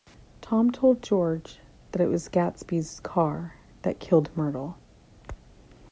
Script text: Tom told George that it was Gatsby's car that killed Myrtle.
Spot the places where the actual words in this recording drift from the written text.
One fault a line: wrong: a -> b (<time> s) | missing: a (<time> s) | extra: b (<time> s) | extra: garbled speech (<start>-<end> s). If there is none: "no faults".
no faults